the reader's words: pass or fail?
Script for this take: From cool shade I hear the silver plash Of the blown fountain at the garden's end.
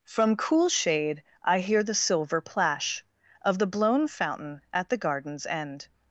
pass